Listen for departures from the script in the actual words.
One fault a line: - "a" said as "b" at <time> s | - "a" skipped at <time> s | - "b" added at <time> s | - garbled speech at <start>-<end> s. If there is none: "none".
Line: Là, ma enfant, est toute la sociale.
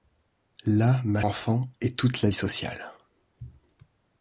none